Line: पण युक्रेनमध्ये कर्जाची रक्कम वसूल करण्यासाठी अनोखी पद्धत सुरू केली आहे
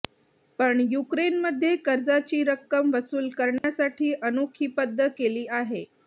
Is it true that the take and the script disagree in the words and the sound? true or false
true